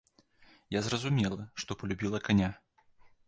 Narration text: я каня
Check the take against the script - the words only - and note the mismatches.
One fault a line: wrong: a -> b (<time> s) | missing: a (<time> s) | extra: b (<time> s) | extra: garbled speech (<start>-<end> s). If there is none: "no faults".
extra: зразумела што палюбіла (0.9 s)